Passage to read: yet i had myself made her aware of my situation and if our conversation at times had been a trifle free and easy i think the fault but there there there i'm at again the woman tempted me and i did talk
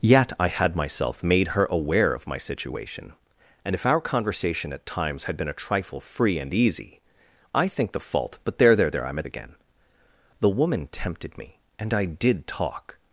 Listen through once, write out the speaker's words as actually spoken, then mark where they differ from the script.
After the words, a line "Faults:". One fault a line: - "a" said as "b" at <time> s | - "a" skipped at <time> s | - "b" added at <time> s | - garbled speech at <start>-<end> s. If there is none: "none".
yet i had myself made her aware of my situation and if our conversation at times had been a trifle free and easy i think the fault but there there there i'm at again the woman tempted me and i did talk
Faults:
none